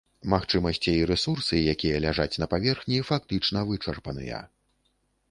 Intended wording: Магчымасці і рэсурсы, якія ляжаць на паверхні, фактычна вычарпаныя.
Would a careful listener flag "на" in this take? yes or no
no